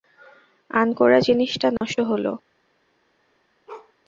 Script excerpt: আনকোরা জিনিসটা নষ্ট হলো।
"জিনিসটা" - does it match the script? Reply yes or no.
yes